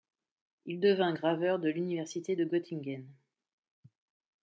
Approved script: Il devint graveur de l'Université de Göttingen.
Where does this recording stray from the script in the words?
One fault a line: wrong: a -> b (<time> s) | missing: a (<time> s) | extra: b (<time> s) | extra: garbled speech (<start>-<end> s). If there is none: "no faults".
no faults